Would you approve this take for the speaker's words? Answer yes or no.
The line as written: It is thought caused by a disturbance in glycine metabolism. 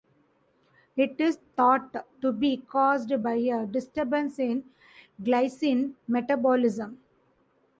no